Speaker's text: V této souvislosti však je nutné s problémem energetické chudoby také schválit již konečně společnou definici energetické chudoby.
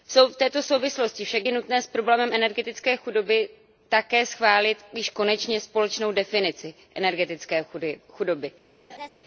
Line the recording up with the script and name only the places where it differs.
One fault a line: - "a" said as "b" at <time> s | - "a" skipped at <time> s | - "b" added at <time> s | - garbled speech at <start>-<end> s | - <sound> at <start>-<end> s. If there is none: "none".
- laugh at 8.9-9.1 s